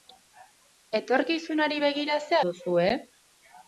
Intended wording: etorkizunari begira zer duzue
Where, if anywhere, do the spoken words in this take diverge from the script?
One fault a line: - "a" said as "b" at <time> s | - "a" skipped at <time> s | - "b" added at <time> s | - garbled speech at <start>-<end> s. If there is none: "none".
none